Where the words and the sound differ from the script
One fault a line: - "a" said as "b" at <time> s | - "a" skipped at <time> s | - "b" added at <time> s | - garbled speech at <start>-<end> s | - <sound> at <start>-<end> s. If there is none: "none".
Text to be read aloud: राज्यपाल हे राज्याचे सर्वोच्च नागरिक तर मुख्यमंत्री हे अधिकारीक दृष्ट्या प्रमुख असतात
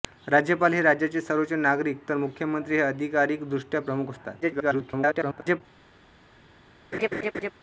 - garbled speech at 4.4-5.6 s
- laugh at 6.9-7.5 s